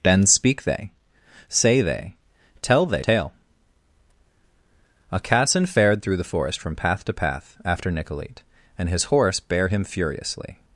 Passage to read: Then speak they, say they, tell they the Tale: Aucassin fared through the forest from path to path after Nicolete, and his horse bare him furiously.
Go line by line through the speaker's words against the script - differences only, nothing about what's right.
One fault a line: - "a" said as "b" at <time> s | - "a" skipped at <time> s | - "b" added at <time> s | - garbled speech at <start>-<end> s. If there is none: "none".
- "the" skipped at 3.0 s